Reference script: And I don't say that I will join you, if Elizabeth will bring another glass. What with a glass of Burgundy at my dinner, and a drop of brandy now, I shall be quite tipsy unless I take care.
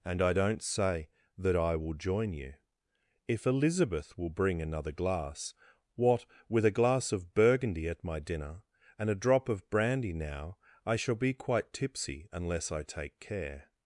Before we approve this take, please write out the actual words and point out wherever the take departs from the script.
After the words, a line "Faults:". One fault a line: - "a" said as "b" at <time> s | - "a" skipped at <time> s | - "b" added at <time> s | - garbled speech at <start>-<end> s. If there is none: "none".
And I don't say that I will join you, if Elizabeth will bring another glass. What with a glass of Burgundy at my dinner, and a drop of brandy now, I shall be quite tipsy unless I take care.
Faults:
none